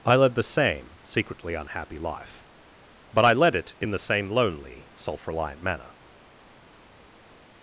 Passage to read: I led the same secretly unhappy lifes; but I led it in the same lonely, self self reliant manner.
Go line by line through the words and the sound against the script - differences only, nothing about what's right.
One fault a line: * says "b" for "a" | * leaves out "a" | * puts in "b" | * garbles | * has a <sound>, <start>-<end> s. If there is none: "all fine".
* says "life" for "lifes"
* leaves out "self"